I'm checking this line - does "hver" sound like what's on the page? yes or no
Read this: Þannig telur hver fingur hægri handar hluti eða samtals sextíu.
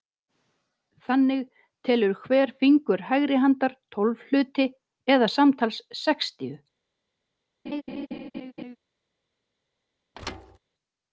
yes